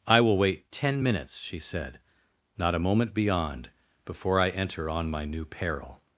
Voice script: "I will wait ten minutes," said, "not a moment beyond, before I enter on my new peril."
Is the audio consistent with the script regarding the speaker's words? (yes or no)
no